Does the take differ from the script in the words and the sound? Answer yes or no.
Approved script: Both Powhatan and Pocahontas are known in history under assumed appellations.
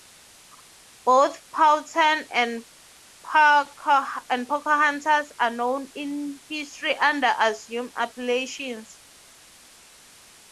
no